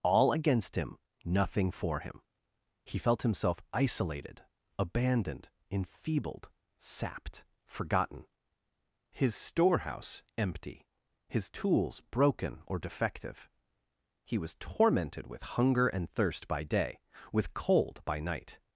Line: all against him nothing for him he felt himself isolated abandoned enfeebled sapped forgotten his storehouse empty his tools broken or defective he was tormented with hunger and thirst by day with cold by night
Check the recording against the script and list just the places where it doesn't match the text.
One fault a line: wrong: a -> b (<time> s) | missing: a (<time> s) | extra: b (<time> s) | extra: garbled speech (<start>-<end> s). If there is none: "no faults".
no faults